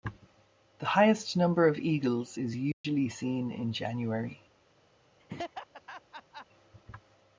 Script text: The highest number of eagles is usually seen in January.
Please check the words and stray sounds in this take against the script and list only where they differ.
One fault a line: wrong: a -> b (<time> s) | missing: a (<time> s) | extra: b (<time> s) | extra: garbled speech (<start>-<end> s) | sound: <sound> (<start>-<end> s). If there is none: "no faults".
sound: dropout (2.7-2.8 s)
sound: laugh (5.2-6.5 s)